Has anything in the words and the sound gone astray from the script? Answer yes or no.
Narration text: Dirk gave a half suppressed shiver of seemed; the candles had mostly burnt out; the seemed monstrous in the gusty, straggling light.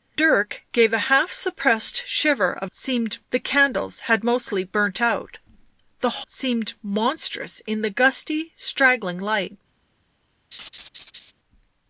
yes